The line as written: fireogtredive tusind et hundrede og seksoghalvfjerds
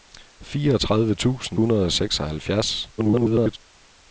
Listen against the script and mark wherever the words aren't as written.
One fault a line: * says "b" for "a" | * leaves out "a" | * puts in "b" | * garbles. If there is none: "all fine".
* leaves out "et"
* garbles